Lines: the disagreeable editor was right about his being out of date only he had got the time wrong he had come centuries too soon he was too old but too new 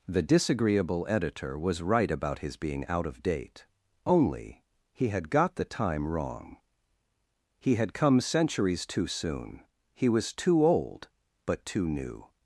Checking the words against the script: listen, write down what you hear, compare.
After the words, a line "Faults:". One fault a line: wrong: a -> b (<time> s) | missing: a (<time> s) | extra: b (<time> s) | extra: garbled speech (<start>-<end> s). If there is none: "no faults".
the disagreeable editor was right about his being out of date only he had got the time wrong he had come centuries too soon he was too old but too new
Faults:
no faults